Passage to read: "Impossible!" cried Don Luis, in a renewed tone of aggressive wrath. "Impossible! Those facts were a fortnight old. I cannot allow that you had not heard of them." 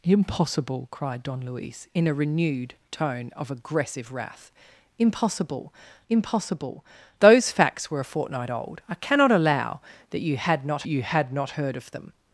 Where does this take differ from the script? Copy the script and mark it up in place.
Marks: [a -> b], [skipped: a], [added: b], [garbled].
"Impossible!" cried Don Luis, in a renewed tone of aggressive wrath. "Impossible! [added: impossible] Those facts were a fortnight old. I cannot allow that you had not [added: you had not] heard of them."